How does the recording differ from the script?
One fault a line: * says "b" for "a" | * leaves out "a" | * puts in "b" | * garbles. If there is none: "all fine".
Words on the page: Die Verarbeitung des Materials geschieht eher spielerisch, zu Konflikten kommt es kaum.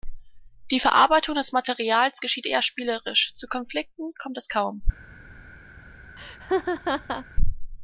all fine